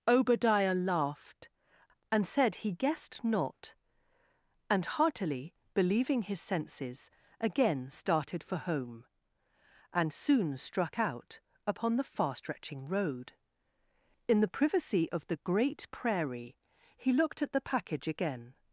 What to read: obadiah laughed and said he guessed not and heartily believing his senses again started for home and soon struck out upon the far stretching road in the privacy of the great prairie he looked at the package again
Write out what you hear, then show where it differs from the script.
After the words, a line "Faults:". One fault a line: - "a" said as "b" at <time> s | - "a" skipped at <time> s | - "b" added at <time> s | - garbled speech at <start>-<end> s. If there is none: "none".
obadiah laughed and said he guessed not and heartily believing his senses again started for home and soon struck out upon the far stretching road in the privacy of the great prairie he looked at the package again
Faults:
none